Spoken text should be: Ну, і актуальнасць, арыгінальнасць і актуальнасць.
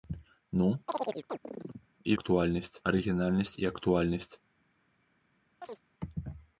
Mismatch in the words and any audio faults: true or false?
true